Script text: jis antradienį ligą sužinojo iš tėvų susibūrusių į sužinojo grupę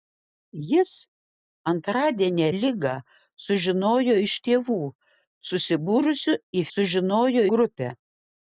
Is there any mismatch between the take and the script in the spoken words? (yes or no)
no